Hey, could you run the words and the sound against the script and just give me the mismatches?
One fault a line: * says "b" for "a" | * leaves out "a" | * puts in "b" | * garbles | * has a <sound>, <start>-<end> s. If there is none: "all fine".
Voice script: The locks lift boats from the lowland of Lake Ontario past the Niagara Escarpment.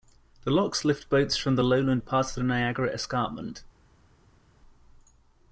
* leaves out "of Lake Ontario"